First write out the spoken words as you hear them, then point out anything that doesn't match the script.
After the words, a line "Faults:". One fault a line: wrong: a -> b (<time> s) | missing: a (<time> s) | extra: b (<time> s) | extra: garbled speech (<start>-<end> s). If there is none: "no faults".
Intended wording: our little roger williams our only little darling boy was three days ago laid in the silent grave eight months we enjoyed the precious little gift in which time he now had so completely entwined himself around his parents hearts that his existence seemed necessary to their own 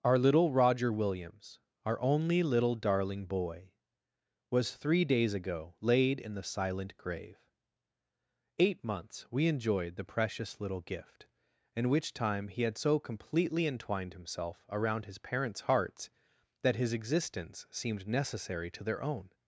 our little roger williams our only little darling boy was three days ago laid in the silent grave eight months we enjoyed the precious little gift in which time he had so completely entwined himself around his parents hearts that his existence seemed necessary to their own
Faults:
missing: now (12.6 s)